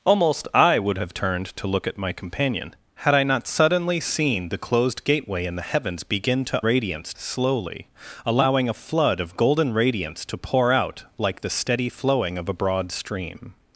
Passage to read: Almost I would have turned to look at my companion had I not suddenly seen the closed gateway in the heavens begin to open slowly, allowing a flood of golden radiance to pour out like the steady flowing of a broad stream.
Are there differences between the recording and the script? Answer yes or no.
yes